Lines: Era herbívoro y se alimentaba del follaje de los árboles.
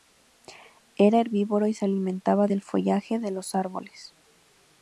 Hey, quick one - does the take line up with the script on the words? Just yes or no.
yes